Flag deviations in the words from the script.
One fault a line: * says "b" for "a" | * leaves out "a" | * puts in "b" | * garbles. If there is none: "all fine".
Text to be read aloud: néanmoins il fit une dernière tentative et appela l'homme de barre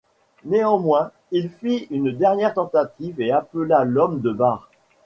all fine